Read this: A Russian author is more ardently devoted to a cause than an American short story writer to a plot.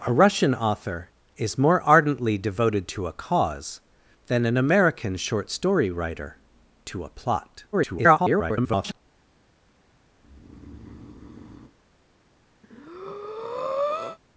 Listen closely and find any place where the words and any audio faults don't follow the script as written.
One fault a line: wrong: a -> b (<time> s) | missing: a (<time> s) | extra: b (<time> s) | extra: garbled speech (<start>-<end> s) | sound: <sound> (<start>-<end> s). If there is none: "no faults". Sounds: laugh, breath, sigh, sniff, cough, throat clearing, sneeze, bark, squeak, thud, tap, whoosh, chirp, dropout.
extra: garbled speech (7.7-9.0 s)
sound: breath (10.2-11.7 s)
sound: breath (12.6-14.2 s)